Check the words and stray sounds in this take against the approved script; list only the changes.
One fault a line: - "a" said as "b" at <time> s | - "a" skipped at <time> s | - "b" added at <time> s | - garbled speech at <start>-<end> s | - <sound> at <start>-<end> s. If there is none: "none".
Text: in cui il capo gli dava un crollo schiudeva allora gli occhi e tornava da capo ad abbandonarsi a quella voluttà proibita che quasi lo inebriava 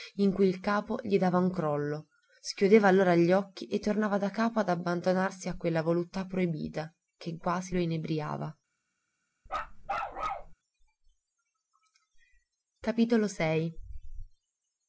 - bark at 9.5-10.5 s